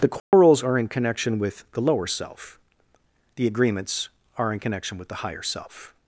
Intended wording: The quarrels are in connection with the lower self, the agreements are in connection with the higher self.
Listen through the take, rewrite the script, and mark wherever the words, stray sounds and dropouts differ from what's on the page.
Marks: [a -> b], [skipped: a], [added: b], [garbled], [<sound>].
The quarrels [dropout] are in connection with the lower self, the agreements are in connection with the higher self.